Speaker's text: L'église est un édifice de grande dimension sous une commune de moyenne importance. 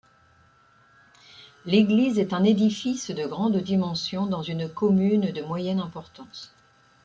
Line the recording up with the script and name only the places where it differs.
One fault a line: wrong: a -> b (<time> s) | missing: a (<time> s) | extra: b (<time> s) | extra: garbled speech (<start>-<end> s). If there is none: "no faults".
wrong: sous -> dans (4.2 s)